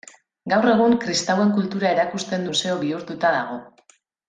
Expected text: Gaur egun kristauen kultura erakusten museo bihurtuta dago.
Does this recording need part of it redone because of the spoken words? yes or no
no